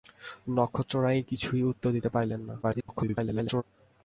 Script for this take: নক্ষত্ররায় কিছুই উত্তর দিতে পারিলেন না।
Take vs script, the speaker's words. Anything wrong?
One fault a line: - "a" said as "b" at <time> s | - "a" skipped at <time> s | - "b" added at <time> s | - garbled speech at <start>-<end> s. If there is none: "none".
- garbled speech at 2.6-3.6 s